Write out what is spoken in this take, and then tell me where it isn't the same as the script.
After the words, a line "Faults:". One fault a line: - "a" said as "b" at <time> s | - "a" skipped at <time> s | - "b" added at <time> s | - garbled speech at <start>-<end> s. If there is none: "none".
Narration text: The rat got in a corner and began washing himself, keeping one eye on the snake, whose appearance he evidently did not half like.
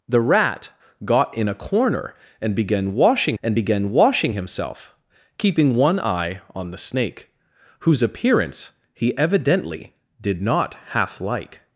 The rat got in a corner and began washing and began washing himself, keeping one eye on the snake, whose appearance he evidently did not half like.
Faults:
- "and began washing" added at 3.4 s